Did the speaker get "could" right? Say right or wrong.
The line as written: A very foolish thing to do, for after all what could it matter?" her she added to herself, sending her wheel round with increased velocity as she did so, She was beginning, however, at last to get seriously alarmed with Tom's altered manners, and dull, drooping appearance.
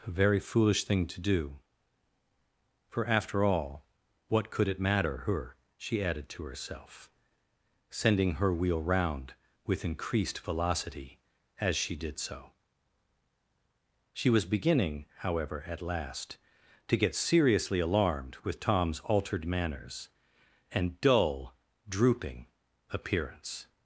right